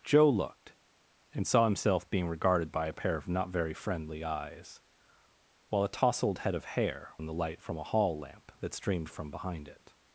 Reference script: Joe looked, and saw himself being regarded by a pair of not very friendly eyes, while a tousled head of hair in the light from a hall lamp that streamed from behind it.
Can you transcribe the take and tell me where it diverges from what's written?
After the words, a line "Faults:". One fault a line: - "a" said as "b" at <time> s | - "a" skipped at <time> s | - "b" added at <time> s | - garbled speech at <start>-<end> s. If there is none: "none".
Joe looked, and saw himself being regarded by a pair of not very friendly eyes, while a tousled head of hair in the light from a hall lamp that streamed from behind it.
Faults:
none